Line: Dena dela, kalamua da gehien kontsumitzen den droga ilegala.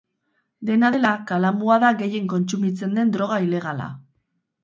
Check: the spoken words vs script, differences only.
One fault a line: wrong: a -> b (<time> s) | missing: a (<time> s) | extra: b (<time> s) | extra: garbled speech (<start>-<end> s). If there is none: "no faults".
no faults